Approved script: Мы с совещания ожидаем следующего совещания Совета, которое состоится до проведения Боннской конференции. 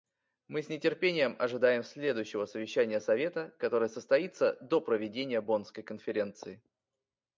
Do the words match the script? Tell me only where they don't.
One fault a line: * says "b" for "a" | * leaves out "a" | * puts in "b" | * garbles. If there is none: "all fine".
* says "нетерпением" for "совещания"